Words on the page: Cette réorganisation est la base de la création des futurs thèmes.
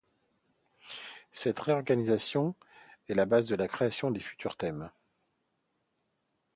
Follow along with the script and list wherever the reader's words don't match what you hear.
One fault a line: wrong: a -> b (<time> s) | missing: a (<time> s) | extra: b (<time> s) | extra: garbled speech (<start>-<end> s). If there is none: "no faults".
no faults